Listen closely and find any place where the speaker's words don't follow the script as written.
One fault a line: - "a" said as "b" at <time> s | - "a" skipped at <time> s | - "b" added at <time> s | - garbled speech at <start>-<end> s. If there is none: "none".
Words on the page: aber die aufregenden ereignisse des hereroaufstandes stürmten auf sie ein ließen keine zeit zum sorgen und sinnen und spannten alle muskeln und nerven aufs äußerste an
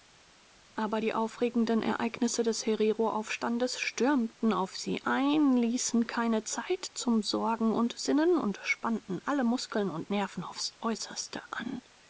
none